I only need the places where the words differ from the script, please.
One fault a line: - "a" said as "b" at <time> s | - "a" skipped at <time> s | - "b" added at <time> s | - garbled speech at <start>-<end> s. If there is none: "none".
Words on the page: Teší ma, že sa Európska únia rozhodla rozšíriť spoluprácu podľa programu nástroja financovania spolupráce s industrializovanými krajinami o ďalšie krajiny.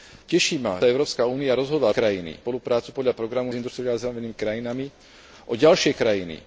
- "že" skipped at 0.8 s
- "rozšíriť" said as "krajiny" at 1.9 s
- "nástroja financovania spolupráce" skipped at 3.5 s